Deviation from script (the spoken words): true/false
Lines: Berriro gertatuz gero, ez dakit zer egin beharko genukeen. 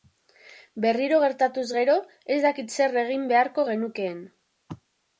false